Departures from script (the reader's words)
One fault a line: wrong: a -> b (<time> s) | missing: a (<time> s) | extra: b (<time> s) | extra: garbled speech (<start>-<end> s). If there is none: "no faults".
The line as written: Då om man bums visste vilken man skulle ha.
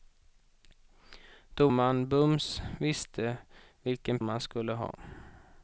no faults